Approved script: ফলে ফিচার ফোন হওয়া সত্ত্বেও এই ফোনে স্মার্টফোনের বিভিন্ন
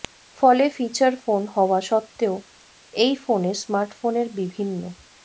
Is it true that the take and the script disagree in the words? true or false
false